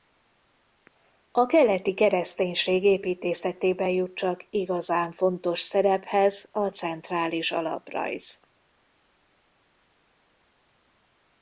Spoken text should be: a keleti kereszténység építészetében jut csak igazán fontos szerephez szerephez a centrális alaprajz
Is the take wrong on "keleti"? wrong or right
right